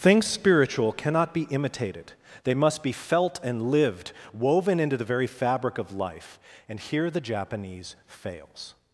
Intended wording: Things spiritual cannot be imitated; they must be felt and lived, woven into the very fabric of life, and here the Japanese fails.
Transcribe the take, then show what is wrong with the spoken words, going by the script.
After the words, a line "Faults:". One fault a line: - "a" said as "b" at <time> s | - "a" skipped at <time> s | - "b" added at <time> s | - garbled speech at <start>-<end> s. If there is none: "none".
Things spiritual cannot be imitated; they must be felt and lived, woven into the very fabric of life, and here the Japanese fails.
Faults:
none